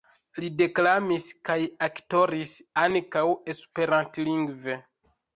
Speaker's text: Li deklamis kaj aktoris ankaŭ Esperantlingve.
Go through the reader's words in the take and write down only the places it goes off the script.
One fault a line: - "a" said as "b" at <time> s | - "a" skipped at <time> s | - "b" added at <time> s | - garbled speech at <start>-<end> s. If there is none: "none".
none